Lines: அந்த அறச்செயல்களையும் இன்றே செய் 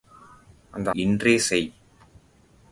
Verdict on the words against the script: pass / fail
fail